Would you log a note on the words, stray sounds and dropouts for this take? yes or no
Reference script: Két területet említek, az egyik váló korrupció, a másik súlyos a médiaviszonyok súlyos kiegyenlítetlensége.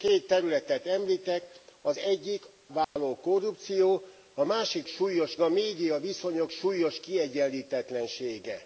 yes